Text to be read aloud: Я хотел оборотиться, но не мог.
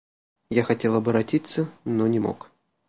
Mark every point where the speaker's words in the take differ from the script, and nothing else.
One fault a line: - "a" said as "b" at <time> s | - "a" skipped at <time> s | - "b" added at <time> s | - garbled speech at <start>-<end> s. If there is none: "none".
none